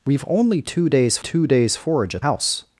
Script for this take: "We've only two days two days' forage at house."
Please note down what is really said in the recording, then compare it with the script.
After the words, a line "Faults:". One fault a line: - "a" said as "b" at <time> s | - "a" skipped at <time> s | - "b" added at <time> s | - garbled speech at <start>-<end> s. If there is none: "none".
"We've only two days two days' forage at house."
Faults:
none